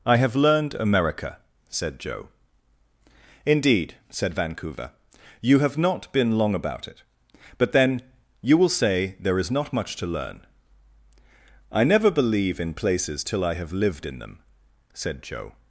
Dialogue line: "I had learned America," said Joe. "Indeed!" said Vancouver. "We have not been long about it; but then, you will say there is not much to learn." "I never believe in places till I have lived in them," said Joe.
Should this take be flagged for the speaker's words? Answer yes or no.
yes